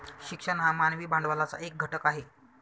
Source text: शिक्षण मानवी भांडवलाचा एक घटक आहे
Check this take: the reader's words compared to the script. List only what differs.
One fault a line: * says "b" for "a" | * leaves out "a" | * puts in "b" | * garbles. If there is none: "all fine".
* puts in "हा"